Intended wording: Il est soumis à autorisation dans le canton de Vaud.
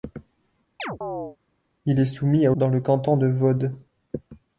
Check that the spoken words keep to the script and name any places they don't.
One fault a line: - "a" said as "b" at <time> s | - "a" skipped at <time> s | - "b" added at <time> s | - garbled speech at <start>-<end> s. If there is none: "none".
- "autorisation" skipped at 2.5 s